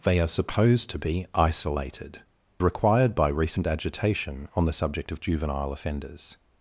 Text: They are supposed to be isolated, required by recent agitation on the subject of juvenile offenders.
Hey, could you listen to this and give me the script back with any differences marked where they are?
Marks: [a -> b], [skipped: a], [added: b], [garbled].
They are supposed to be isolated, required by recent agitation on the subject of juvenile offenders.